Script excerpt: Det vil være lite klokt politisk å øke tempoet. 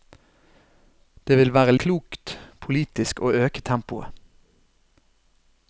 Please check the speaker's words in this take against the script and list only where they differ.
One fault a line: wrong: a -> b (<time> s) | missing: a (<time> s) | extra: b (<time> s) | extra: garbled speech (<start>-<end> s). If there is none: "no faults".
missing: lite (1.8 s)